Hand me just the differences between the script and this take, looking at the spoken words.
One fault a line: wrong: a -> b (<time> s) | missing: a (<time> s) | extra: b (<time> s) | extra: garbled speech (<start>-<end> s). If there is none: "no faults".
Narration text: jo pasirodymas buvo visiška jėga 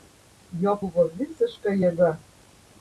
missing: pasirodymas (0.7 s)